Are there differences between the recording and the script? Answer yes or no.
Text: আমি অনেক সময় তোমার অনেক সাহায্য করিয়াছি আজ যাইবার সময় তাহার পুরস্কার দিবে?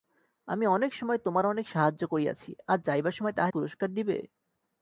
no